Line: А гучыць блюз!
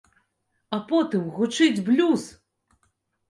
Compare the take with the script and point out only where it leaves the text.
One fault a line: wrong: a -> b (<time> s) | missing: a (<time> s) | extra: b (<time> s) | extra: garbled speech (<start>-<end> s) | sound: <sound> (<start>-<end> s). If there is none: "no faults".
extra: потым (0.9 s)